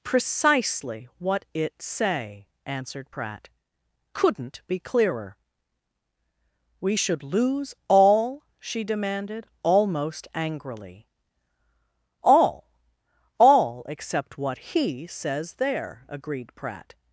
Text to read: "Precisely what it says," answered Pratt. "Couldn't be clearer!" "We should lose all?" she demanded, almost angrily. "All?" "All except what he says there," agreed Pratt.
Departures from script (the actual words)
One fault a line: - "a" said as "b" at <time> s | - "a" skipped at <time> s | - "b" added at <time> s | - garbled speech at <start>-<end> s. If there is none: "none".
- "says" said as "say" at 1.8 s